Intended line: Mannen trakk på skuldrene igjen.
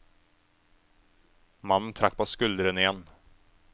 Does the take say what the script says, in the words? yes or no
yes